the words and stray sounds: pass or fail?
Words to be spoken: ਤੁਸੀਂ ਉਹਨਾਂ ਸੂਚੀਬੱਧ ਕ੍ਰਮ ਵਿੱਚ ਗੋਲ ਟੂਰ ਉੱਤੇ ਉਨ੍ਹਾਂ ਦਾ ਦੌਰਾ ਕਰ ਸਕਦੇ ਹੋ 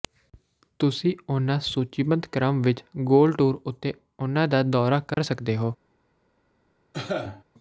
fail